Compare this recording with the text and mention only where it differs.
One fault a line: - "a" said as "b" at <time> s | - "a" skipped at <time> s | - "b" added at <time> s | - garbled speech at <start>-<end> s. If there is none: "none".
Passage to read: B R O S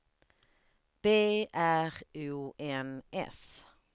- "N" added at 2.6 s